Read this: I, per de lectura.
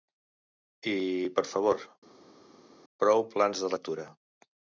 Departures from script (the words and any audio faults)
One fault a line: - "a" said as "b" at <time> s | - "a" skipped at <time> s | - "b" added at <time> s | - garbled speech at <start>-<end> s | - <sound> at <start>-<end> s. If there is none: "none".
- "favor prou plans" added at 1.5 s